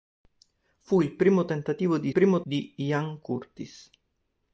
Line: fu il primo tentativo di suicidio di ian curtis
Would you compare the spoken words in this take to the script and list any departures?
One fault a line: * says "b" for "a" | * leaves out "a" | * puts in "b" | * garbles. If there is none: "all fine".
* says "primo" for "suicidio"